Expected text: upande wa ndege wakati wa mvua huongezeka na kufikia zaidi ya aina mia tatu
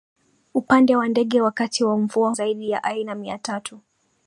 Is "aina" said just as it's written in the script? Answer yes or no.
yes